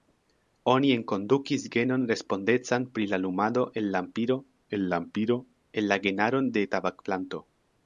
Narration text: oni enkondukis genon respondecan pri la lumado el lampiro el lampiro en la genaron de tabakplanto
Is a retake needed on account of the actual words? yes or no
no